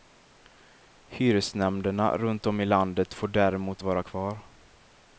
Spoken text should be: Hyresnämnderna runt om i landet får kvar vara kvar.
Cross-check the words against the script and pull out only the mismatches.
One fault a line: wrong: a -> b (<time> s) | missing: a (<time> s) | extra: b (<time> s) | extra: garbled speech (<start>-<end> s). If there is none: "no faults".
wrong: kvar -> däremot (3.3 s)